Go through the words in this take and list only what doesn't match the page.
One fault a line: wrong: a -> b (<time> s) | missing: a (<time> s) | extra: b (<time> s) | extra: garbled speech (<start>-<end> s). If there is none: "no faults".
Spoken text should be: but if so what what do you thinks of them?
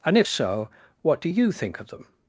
wrong: but -> and (0.1 s)
missing: what (1.2 s)
wrong: thinks -> think (1.5 s)